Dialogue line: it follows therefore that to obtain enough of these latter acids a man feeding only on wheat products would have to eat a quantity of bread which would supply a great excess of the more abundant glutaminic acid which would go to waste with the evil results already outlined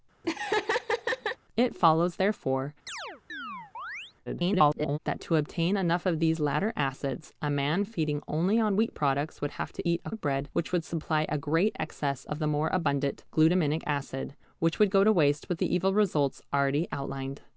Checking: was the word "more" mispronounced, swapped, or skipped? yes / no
no